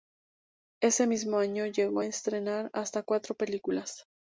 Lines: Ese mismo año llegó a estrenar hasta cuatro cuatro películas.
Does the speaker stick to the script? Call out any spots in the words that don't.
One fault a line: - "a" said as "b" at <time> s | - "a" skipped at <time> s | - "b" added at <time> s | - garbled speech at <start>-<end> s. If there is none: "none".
- "cuatro" skipped at 3.4 s